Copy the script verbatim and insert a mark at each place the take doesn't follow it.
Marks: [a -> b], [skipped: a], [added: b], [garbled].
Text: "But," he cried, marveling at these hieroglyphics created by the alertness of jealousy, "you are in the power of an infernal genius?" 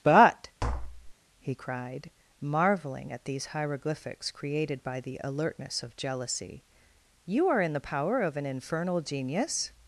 "But," he cried, marveling at these hieroglyphics created by the alertness of jealousy, "you are in the power of an infernal genius?"